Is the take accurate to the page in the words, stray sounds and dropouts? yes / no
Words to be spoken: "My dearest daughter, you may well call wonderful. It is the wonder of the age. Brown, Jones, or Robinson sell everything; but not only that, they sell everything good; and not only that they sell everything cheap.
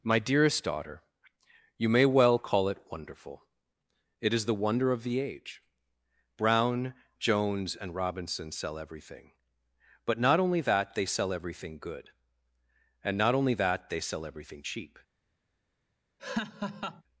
no